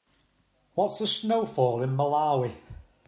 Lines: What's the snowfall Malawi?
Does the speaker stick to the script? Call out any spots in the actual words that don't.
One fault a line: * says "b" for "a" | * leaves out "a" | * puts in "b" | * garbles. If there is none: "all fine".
* puts in "in"